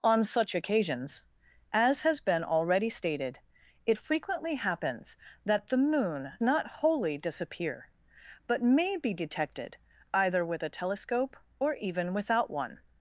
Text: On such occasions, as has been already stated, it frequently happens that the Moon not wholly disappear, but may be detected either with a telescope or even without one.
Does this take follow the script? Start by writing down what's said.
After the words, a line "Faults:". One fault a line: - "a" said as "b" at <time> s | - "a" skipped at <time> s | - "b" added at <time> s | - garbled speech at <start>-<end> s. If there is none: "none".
On such occasions, as has been already stated, it frequently happens that the Moon not wholly disappear, but may be detected either with a telescope or even without one.
Faults:
none